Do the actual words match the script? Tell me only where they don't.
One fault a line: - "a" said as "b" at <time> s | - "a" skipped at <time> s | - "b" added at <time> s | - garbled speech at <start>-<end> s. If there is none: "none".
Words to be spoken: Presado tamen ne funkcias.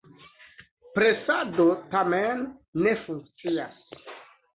none